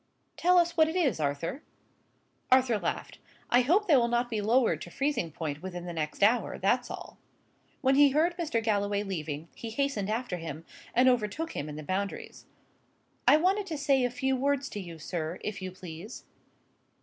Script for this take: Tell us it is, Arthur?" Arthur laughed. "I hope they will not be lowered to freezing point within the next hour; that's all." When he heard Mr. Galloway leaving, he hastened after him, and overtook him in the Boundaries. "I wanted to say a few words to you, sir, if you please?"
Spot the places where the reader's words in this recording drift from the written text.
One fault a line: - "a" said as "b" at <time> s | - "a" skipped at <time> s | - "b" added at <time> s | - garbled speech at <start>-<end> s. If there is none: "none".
- "what" added at 0.8 s